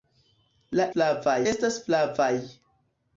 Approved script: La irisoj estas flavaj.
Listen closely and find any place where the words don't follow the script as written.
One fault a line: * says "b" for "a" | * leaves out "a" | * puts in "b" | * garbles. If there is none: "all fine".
* says "flavaj" for "irisoj"